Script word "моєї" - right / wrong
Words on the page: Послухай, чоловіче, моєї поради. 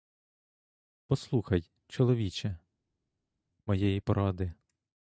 right